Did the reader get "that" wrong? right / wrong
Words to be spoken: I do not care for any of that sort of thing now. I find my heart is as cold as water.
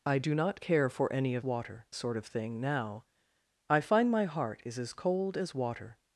wrong